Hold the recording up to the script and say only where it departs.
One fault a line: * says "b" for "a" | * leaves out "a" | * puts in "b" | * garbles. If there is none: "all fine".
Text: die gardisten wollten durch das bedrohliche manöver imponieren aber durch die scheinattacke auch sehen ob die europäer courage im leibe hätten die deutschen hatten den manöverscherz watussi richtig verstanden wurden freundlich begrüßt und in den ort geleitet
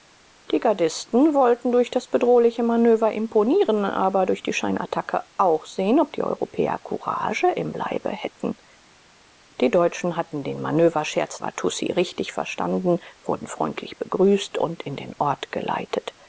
all fine